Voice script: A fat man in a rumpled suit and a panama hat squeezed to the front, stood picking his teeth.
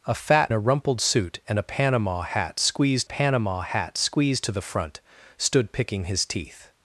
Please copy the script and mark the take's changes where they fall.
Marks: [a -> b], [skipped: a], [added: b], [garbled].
A fat [skipped: man in] a rumpled suit and a panama hat squeezed [added: panama hat squeezed] to the front, stood picking his teeth.